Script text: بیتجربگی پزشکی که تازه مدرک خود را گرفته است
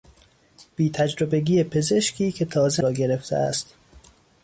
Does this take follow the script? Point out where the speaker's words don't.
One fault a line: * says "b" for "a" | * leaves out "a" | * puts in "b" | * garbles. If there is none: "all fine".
* leaves out "مدرک خود"